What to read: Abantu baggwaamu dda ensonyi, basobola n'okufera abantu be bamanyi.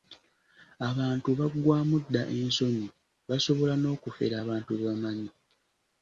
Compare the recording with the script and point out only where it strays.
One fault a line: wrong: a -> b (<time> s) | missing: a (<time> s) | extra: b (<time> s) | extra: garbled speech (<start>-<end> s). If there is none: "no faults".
no faults